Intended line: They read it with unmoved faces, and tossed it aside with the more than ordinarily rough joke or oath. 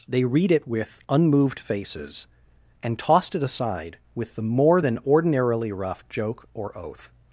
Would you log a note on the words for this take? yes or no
no